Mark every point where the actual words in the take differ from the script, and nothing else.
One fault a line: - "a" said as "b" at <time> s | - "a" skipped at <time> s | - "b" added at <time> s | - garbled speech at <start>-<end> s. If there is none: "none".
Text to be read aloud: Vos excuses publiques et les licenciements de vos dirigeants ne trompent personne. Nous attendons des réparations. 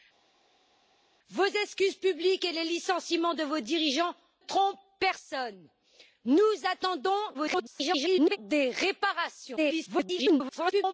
- "ne" skipped at 4.1 s
- garbled speech at 7.3-8.4 s
- garbled speech at 9.6-10.9 s